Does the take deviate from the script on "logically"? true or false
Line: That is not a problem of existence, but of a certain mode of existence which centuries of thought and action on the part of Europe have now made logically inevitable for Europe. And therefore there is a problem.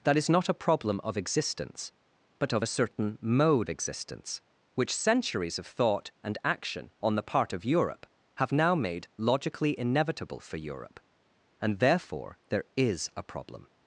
false